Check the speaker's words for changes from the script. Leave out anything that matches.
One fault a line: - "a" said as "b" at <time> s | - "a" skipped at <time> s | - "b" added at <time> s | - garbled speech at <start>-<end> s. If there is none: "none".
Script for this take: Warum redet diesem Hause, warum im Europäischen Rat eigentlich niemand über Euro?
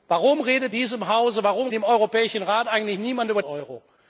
none